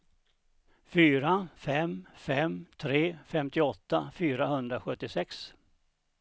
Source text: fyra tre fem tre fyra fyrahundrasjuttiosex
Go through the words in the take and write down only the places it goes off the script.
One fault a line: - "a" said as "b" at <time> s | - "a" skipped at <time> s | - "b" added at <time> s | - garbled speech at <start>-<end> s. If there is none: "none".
- "tre" said as "fem" at 1.5 s
- "fyra" said as "femtioåtta" at 3.2 s